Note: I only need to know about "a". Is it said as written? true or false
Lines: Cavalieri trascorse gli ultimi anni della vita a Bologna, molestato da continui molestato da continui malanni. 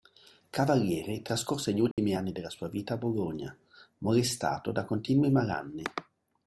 true